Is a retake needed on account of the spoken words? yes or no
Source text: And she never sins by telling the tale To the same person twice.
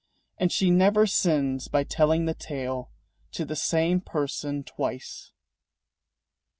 no